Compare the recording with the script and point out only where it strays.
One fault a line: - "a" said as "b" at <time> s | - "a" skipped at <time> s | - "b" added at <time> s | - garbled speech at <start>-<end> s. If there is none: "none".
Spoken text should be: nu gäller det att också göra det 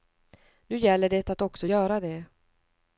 none